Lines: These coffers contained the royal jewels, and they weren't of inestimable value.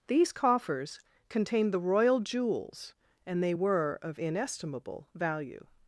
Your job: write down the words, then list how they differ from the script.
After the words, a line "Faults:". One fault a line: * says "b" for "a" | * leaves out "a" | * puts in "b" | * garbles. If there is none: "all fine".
These coffers contained the royal jewels, and they were of inestimable value.
Faults:
* says "were" for "weren't"